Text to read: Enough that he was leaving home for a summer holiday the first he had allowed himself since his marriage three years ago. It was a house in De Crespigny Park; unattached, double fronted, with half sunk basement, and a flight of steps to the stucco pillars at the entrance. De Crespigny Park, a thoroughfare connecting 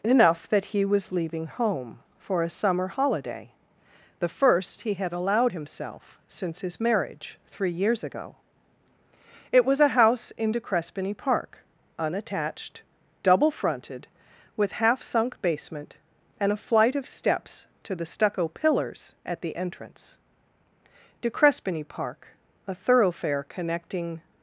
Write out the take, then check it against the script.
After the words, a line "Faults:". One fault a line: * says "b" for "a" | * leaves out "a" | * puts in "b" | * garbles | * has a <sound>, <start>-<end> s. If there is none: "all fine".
Enough that he was leaving home for a summer holiday the first he had allowed himself since his marriage three years ago. It was a house in De Crespigny Park; unattached, double fronted, with half sunk basement, and a flight of steps to the stucco pillars at the entrance. De Crespigny Park, a thoroughfare connecting
Faults:
all fine